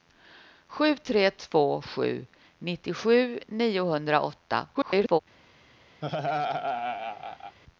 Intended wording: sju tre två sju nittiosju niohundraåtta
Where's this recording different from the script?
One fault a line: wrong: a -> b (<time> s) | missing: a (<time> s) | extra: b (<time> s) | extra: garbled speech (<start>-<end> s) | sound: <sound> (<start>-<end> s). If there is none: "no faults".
extra: garbled speech (4.7-5.2 s)
sound: laugh (6.0-7.6 s)